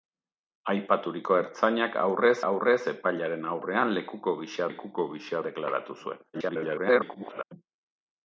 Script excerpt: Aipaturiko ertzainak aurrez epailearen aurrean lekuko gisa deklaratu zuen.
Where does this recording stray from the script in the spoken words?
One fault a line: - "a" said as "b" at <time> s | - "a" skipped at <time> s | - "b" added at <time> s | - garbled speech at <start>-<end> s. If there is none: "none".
- "aurrez" added at 2.5 s
- "lekuko gisa" added at 4.7 s
- garbled speech at 6.3-7.4 s